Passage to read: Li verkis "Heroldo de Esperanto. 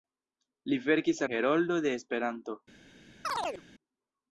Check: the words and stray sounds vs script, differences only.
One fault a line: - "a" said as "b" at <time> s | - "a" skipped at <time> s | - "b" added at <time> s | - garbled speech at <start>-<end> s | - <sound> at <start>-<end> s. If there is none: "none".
- chirp at 3.2-3.6 s